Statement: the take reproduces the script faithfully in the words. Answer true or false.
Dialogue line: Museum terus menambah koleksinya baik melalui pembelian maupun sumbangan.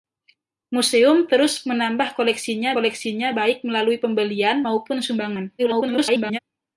false